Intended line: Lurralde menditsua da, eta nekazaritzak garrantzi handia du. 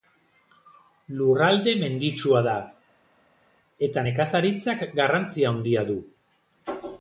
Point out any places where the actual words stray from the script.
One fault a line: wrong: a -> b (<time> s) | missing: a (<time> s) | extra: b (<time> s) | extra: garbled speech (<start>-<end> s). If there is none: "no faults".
no faults